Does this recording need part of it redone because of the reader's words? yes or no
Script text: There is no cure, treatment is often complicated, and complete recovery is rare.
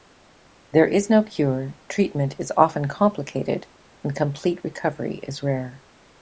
no